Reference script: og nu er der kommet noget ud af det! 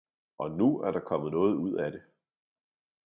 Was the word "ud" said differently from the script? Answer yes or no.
no